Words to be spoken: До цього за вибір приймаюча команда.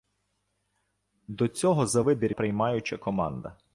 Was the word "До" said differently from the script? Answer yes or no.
no